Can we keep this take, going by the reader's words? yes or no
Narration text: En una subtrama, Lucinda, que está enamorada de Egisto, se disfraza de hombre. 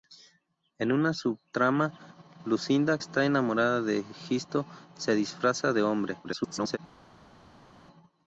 no